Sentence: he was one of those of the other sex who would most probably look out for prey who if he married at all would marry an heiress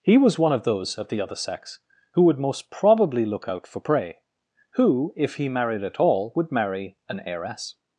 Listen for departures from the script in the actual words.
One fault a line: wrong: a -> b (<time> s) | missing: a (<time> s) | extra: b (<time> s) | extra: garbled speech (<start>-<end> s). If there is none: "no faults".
no faults